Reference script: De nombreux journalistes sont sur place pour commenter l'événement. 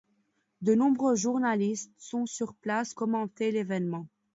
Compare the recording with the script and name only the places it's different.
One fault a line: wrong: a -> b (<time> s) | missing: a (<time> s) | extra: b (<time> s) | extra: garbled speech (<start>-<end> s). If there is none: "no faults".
missing: pour (2.9 s)